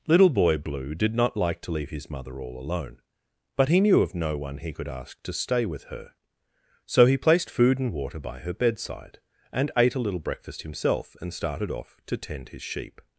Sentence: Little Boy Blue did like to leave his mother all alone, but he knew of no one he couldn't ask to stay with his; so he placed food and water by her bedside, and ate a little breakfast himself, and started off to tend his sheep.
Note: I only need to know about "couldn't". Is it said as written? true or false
false